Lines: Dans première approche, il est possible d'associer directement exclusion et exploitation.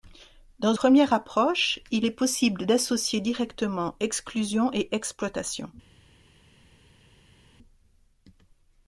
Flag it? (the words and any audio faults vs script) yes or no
no